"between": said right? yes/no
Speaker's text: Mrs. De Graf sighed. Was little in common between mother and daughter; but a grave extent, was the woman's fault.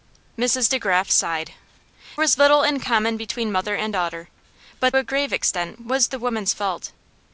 yes